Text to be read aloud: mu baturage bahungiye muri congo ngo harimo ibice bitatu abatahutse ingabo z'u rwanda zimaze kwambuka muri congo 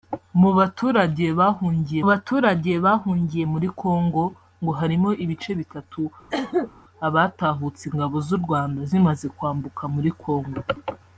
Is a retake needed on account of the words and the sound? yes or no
yes